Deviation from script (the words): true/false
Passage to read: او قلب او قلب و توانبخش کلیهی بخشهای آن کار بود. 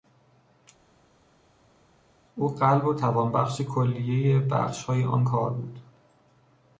true